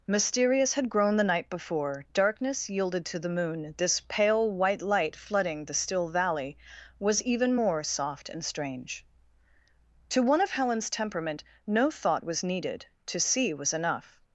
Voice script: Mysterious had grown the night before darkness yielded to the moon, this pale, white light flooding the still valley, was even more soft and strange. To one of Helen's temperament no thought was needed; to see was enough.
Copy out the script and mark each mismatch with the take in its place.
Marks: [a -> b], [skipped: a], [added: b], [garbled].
Mysterious had grown the night before darkness yielded to the moon, this pale, white light flooding the still valley, was even more soft and strange. To one of Helen's temperament no thought was needed; to see was enough.